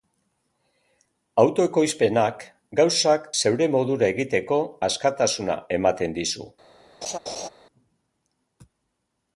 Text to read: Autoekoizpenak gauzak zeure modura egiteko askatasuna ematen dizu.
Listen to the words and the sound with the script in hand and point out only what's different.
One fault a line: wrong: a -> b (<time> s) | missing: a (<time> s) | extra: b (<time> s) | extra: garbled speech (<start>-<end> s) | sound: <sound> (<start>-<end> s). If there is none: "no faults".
sound: laugh (7.0-7.5 s)